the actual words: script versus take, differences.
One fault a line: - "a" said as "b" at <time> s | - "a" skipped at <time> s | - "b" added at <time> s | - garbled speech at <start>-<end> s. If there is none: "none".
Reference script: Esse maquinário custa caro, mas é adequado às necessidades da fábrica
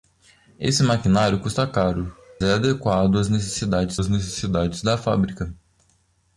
- "mas" skipped at 2.1 s
- "às necessidades" added at 4.0 s